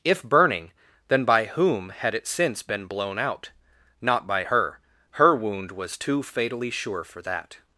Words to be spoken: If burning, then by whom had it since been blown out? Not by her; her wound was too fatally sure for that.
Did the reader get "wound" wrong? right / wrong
right